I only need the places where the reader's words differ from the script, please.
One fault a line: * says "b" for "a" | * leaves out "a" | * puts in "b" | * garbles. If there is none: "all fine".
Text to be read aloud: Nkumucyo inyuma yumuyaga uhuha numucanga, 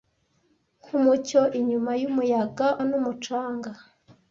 * leaves out "uhuha"